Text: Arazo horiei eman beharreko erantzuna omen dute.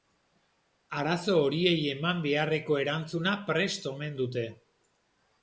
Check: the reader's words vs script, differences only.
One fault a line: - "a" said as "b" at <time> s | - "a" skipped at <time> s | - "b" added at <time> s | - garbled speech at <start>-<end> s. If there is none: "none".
- "prest" added at 3.5 s